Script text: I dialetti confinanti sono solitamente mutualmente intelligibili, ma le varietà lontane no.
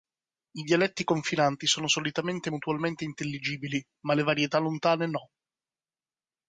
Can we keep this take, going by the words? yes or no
yes